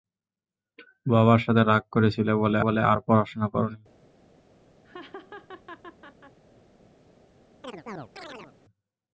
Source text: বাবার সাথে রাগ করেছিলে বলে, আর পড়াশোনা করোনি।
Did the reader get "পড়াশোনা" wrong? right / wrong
right